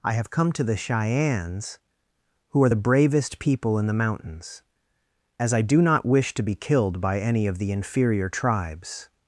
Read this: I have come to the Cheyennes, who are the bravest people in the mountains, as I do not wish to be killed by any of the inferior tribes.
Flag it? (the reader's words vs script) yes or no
no